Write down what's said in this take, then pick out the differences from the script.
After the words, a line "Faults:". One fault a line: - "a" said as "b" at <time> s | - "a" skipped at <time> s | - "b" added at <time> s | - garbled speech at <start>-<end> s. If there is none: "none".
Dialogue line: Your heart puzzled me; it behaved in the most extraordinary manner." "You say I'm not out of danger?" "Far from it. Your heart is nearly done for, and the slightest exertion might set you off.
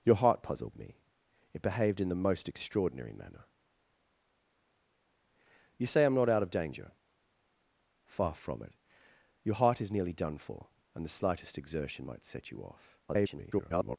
Your heart puzzled me; it behaved in the most extraordinary manner." "You say I'm not out of danger?" "Far from it. Your heart is nearly done for, and the slightest exertion might set you off. [garbled]
Faults:
- garbled speech at 13.1-14.0 s